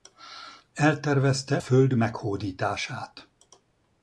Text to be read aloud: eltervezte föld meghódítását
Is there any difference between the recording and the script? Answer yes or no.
no